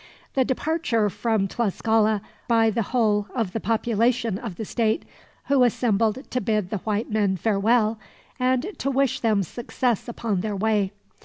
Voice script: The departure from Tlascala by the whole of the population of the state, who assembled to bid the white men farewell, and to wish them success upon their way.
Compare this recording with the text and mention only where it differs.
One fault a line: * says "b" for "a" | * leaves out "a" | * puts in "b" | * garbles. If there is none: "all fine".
all fine